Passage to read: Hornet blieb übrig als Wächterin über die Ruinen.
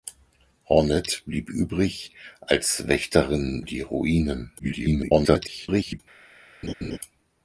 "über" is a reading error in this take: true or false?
true